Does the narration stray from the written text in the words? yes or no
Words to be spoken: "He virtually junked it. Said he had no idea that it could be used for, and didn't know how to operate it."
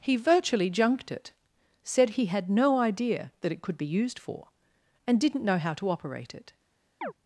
no